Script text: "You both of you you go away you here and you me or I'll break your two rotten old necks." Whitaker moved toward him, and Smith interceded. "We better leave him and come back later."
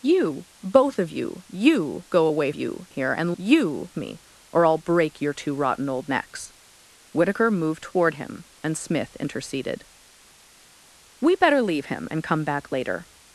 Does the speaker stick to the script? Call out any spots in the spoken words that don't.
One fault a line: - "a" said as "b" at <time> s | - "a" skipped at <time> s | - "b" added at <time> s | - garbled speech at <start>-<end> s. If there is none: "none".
none